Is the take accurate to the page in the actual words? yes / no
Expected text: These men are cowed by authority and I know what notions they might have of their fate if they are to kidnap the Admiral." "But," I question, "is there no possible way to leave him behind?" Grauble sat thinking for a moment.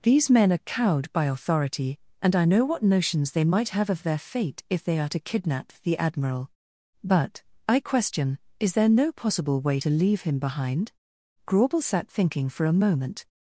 yes